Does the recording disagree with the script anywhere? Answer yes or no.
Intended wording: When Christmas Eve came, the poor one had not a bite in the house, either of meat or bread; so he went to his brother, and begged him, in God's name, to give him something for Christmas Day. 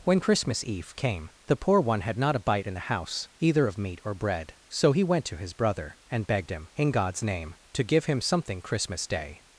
yes